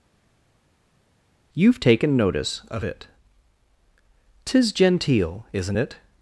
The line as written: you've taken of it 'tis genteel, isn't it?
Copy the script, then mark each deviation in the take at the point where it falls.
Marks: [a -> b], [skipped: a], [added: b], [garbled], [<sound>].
you've taken [added: notice] of it 'tis genteel, isn't it?